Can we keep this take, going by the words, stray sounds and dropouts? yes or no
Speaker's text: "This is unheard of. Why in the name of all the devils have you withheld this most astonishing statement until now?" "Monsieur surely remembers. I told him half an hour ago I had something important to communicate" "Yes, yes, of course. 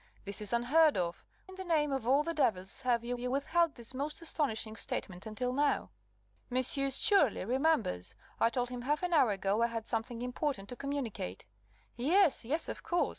no